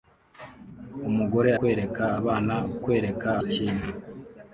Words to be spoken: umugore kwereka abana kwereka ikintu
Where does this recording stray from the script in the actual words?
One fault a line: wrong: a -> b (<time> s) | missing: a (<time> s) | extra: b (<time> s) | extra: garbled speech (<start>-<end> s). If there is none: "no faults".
no faults